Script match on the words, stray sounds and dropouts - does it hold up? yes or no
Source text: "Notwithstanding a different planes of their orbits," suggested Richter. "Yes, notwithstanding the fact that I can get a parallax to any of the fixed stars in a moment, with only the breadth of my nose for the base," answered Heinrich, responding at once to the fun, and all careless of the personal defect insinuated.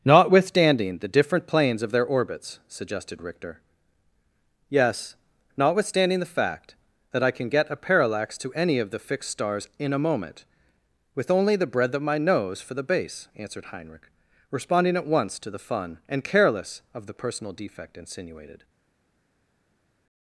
no